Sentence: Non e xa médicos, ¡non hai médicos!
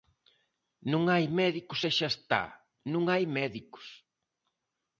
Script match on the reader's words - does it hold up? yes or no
no